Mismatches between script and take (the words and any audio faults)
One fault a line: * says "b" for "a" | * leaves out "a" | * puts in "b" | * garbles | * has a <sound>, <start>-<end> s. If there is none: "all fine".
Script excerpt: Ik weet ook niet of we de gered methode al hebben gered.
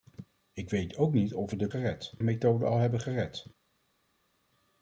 all fine